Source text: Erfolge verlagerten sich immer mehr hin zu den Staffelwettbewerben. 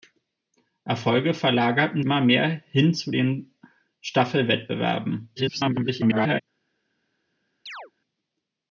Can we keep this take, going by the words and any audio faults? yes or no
no